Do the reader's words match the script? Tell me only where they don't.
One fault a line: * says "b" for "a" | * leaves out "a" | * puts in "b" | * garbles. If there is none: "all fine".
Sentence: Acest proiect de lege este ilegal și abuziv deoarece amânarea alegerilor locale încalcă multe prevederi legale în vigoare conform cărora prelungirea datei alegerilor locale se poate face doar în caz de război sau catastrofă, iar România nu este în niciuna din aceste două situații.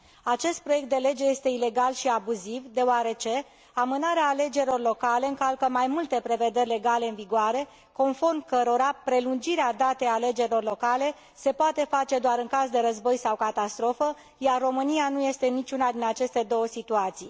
* puts in "mai"